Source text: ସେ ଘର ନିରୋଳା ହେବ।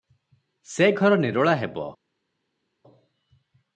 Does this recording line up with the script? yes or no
yes